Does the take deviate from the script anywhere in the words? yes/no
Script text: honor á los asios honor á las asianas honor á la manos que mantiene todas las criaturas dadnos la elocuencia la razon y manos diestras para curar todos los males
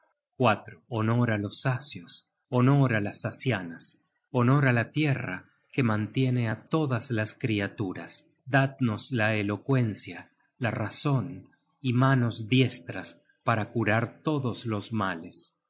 yes